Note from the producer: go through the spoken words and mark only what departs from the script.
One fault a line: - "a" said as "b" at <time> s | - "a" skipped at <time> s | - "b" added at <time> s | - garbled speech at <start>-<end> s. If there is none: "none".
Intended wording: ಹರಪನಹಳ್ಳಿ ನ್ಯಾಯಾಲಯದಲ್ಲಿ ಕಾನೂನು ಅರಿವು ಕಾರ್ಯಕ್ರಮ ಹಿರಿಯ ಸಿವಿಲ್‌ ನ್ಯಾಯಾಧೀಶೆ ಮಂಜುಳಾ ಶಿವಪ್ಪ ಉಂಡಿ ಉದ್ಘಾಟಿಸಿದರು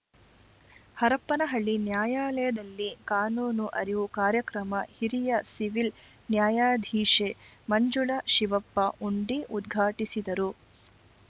none